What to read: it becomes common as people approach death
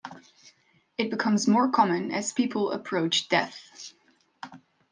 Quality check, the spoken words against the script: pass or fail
fail